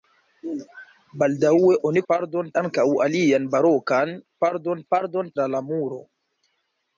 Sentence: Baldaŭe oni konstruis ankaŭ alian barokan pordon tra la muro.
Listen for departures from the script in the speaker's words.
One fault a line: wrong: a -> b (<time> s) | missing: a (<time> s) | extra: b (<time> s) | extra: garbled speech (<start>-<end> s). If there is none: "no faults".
wrong: konstruis -> pordon (2.1 s)
extra: pordon (4.9 s)